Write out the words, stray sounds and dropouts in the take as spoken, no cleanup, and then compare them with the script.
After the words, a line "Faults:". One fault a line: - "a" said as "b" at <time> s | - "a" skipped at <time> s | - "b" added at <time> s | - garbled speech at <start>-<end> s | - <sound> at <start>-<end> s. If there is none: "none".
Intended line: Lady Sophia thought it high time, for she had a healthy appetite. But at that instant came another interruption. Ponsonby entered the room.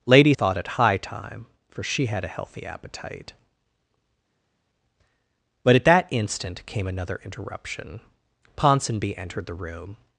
Lady Thought it high time, for she had a healthy appetite. But at that instant came another interruption. Ponsonby entered the room.
Faults:
- "Sophia" skipped at 0.3 s